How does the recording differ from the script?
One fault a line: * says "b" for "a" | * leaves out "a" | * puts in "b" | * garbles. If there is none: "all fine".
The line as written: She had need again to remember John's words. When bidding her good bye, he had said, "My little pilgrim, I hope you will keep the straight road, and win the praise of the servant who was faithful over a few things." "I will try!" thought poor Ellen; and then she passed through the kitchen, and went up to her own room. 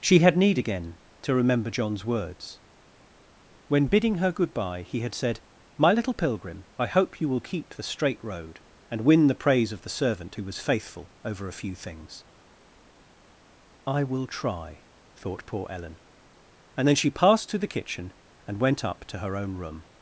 * says "to" for "through"